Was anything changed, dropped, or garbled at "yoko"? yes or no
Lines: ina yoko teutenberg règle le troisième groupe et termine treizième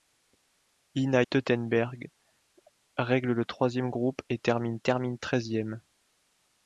yes